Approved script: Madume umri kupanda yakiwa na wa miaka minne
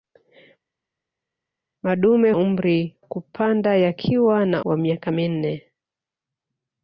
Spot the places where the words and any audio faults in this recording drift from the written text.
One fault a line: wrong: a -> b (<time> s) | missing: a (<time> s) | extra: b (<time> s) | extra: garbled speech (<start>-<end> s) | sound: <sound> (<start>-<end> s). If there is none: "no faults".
no faults